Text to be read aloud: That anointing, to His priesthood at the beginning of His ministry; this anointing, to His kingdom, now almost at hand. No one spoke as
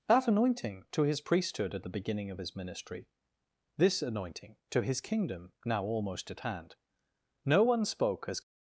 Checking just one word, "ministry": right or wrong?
right